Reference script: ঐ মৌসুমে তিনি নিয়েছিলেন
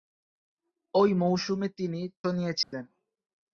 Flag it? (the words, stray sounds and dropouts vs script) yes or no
yes